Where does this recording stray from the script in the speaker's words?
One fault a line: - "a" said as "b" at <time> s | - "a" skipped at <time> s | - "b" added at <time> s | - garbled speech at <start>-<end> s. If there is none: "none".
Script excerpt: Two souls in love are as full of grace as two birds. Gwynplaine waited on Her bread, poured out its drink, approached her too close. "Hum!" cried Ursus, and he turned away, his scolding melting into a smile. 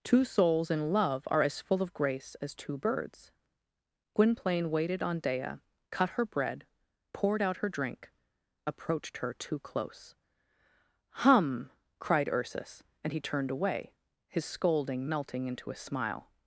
- "Dea cut" added at 5.2 s
- "its" said as "her" at 7.6 s